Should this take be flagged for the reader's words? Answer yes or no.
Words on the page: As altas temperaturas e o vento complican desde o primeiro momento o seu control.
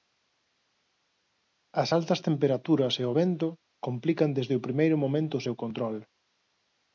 no